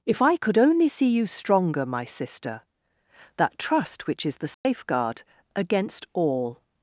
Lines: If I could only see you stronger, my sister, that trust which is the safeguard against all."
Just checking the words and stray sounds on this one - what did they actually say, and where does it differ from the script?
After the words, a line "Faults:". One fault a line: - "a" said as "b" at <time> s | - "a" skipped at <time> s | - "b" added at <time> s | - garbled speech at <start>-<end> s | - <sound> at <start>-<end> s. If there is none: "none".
If I could only see you stronger, my sister, that trust which is the safeguard against all."
Faults:
- dropout at 4.5-4.6 s